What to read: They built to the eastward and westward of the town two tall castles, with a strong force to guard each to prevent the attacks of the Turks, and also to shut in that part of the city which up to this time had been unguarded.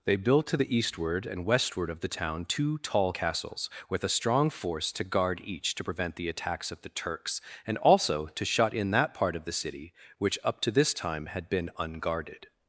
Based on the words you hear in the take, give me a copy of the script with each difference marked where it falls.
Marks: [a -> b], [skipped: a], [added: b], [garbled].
They built to the eastward and westward of the town two tall castles, with a strong force to guard each to prevent the attacks of the Turks, and also to shut in that part of the city which up to this time had been unguarded.